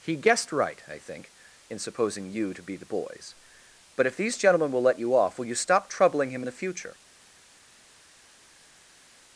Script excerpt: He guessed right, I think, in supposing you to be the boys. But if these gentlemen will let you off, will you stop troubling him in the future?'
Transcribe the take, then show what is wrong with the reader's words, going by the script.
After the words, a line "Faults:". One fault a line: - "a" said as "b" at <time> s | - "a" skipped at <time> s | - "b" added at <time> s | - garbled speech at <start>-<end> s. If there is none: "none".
He guessed right, I think, in supposing you to be the boys. But if these gentlemen will let you off, will you stop troubling him in the future?'
Faults:
none